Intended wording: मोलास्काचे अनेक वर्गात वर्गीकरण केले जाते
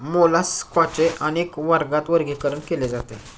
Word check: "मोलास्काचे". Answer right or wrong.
right